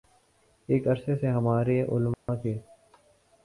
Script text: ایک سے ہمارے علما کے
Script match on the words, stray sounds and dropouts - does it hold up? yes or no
no